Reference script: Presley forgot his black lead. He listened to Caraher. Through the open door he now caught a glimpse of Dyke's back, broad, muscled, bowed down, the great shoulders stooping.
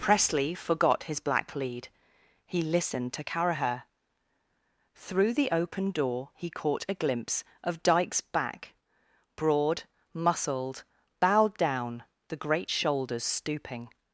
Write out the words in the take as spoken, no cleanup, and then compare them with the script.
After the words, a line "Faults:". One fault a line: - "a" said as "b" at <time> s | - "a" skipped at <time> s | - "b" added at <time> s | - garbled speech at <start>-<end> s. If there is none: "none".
Presley forgot his black lead. He listened to Caraher. Through the open door he caught a glimpse of Dyke's back, broad, muscled, bowed down, the great shoulders stooping.
Faults:
- "now" skipped at 6.5 s